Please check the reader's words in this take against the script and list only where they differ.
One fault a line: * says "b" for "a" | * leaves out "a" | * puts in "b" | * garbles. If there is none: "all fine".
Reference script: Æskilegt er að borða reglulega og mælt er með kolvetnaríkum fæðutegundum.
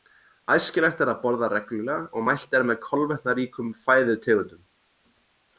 all fine